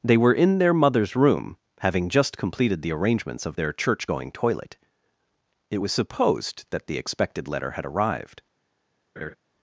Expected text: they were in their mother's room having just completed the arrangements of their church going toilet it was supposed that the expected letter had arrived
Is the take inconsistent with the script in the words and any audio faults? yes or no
yes